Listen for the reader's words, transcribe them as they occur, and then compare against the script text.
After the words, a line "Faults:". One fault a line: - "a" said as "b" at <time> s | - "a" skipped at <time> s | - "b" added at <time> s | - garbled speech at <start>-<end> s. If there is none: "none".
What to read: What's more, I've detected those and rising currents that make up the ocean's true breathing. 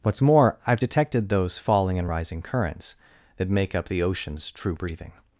What's more, I've detected those falling and rising currents that make up the ocean's true breathing.
Faults:
- "falling" added at 1.6 s